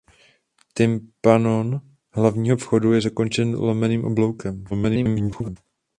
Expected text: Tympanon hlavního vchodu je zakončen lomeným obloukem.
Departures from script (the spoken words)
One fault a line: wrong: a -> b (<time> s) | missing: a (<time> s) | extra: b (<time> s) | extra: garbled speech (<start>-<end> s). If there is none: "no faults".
extra: garbled speech (4.7-5.6 s)